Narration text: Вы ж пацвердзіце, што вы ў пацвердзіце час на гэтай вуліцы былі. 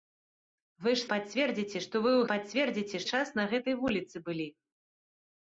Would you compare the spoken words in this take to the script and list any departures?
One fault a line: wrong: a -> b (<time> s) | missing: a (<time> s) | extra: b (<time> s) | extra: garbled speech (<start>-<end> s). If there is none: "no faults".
no faults